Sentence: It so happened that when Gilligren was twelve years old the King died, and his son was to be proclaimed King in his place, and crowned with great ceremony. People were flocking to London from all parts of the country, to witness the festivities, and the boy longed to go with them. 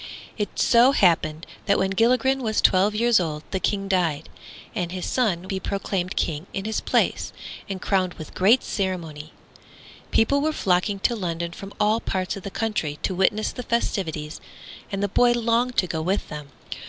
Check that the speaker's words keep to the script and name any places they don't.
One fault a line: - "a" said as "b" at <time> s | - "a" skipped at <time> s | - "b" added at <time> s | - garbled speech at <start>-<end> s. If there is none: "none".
- "was to" skipped at 5.5 s